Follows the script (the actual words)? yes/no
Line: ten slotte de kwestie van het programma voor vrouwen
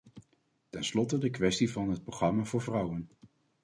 yes